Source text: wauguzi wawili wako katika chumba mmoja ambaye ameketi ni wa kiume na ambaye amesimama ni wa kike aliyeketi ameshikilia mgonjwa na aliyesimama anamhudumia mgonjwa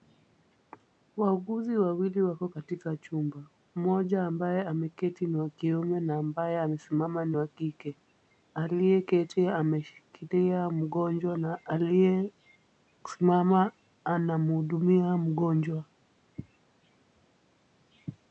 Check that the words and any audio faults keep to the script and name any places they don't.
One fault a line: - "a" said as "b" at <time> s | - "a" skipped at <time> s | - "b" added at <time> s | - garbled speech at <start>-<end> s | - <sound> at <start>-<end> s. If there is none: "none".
none